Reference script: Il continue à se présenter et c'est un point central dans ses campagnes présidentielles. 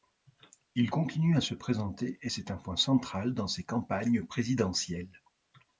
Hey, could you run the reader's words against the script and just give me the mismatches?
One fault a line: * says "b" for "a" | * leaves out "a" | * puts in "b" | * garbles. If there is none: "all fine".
all fine